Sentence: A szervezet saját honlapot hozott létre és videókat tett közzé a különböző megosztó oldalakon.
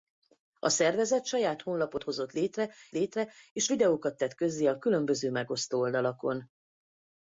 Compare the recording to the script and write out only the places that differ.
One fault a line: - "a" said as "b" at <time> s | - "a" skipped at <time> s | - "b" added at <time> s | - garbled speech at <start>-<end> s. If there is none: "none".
- "létre" added at 2.9 s